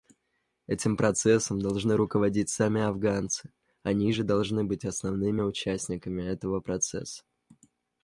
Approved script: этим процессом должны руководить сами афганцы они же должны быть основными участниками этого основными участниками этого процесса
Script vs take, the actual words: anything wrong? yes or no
yes